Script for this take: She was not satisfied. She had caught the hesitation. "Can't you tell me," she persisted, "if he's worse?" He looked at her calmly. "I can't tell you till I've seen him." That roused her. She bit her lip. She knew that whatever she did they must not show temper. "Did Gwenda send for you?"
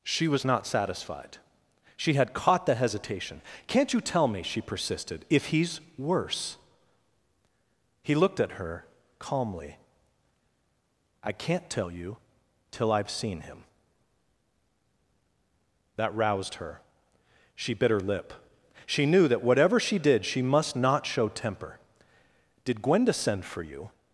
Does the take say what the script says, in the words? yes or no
no